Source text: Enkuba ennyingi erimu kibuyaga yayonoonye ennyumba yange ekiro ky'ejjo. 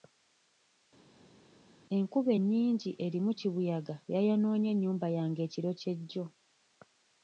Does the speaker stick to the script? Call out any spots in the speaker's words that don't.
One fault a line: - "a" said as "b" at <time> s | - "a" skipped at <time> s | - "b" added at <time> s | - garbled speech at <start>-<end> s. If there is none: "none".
none